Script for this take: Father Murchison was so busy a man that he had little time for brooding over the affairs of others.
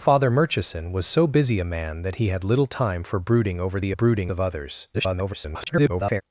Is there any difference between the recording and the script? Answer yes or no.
yes